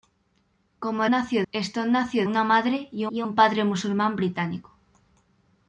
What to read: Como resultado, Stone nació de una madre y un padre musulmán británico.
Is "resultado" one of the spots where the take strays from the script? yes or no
yes